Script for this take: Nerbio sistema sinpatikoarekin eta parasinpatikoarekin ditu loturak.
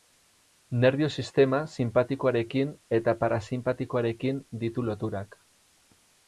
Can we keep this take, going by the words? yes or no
yes